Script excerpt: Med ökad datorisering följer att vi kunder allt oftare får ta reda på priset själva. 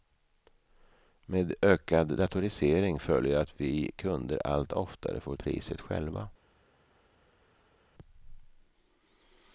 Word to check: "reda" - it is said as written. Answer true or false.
false